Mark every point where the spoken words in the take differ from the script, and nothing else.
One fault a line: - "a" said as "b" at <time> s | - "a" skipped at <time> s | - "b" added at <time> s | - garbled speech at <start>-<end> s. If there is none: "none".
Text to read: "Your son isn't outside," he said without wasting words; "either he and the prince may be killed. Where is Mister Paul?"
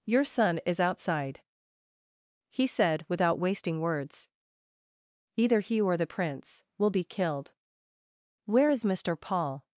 - "isn't" said as "is" at 0.7 s
- "and" said as "or" at 5.8 s
- "may" said as "will" at 6.8 s